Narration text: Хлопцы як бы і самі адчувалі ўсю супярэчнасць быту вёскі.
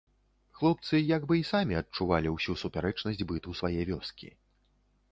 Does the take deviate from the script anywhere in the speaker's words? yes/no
yes